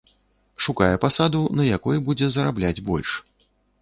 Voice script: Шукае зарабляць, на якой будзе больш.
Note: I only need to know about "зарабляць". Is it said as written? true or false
false